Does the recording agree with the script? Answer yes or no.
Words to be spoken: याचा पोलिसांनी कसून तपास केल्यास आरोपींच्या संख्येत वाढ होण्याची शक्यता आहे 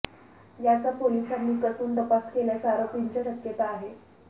no